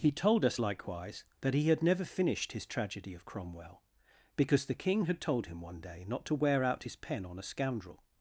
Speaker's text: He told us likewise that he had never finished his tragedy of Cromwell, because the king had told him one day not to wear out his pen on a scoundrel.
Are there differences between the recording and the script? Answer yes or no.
no